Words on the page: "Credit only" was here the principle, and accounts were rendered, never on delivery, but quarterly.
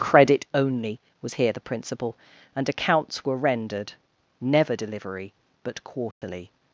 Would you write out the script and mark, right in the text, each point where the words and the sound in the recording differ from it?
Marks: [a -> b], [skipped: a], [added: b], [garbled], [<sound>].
"Credit only" was here the principle, and accounts were rendered, never [skipped: on] delivery, but quarterly. [dropout]